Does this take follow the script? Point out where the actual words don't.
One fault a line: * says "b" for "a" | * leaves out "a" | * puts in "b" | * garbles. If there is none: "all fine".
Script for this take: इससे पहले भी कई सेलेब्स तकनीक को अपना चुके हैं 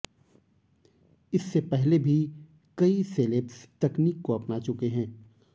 all fine